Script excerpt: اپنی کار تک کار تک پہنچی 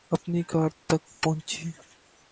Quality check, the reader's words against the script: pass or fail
fail